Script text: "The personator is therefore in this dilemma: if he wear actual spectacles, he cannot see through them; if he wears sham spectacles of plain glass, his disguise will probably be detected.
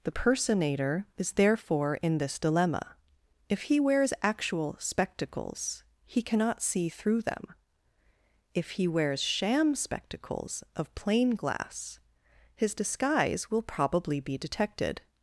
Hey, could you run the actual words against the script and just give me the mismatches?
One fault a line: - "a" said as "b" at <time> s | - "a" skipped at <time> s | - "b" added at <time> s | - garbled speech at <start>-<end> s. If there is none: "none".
- "wear" said as "wears" at 3.8 s